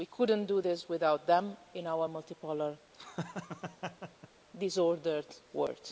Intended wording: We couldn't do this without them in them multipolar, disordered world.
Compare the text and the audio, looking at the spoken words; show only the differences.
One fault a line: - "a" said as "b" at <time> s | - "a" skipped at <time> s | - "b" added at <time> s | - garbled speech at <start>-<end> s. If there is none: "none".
- "them" said as "our" at 1.9 s